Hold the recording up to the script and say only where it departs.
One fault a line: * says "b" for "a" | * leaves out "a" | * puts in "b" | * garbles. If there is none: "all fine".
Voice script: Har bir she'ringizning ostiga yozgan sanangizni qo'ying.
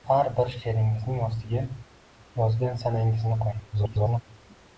* garbles